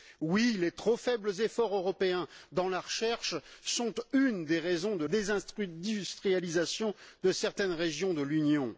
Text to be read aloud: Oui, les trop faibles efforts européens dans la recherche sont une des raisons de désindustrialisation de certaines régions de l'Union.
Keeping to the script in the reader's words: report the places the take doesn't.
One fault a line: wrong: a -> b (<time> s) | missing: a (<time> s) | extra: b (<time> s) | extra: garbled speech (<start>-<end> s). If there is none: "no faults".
no faults